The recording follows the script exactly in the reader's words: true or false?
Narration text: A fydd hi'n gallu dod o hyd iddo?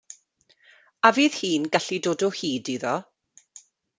true